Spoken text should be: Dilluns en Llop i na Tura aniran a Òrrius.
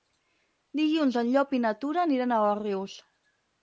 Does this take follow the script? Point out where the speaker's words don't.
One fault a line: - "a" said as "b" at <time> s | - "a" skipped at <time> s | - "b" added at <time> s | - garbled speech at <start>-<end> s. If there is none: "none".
none